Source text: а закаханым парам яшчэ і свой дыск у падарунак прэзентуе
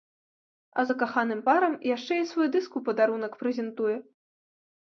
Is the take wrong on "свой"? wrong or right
right